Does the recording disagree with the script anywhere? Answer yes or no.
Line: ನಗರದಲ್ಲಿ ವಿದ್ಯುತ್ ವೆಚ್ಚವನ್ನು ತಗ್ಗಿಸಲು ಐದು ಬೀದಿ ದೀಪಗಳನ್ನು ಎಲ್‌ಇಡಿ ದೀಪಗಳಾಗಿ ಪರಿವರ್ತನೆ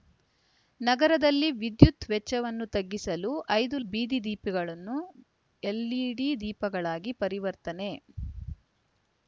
no